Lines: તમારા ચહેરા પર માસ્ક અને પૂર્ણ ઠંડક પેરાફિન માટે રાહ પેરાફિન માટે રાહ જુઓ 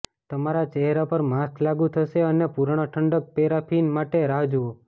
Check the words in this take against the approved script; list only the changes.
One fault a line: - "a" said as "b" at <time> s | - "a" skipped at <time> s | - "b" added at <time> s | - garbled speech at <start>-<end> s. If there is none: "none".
- "લાગુ થશે" added at 1.6 s
- "પેરાફિન માટે રાહ" skipped at 4.4 s